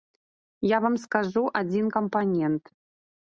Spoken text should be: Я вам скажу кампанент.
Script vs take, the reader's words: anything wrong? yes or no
yes